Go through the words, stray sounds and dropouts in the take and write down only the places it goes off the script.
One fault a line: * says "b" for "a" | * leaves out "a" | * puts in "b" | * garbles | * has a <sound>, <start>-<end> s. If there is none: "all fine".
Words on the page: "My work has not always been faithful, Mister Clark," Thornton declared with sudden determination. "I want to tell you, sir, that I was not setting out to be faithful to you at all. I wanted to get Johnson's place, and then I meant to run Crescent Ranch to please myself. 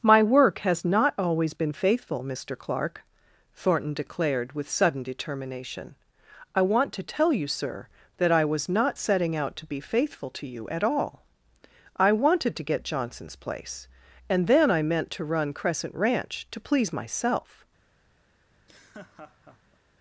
* has a laugh, 18.5-19.8 s